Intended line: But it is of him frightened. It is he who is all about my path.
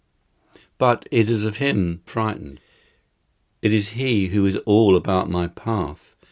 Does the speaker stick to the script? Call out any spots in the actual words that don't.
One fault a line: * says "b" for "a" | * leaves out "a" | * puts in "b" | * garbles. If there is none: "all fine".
all fine